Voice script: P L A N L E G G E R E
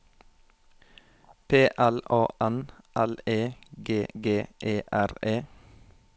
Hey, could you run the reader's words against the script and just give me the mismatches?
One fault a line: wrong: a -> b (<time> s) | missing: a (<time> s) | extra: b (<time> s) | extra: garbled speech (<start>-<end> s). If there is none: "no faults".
no faults